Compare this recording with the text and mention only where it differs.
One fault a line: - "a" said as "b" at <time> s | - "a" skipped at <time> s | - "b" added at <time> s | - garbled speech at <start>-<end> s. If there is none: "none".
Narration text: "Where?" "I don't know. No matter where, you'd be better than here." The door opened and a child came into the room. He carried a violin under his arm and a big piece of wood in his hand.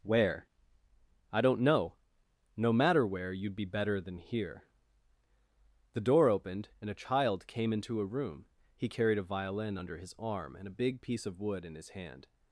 - "the" said as "a" at 8.0 s